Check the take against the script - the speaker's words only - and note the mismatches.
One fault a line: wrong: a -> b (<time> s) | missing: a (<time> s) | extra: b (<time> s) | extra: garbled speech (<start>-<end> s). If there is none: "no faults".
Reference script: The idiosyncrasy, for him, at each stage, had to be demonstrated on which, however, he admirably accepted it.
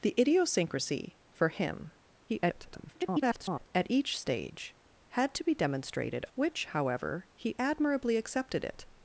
extra: garbled speech (2.3-3.7 s)
missing: on (6.3 s)